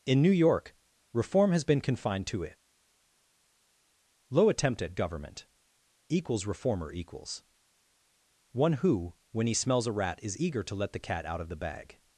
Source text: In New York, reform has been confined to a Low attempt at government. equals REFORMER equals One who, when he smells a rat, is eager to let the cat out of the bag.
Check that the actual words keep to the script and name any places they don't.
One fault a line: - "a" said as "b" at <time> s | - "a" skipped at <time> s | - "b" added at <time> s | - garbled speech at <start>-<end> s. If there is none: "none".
- "a" said as "it" at 2.4 s